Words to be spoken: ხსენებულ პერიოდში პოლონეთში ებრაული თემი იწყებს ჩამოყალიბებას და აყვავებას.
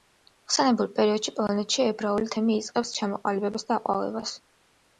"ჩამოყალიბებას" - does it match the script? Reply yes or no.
yes